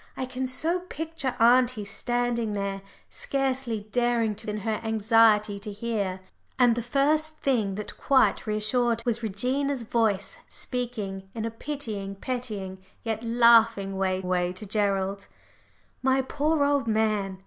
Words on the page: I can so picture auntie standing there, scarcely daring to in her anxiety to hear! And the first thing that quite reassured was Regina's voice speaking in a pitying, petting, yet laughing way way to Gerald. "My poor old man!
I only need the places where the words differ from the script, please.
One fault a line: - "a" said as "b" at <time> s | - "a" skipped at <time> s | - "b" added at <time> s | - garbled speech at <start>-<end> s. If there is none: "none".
none